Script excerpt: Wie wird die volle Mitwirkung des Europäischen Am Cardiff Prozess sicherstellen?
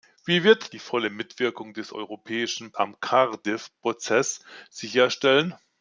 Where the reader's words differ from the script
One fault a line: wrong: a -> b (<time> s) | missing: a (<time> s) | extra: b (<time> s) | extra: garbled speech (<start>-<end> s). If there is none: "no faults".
no faults